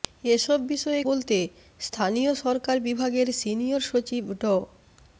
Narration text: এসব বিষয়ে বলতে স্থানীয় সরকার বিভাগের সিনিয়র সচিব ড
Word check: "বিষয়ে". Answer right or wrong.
right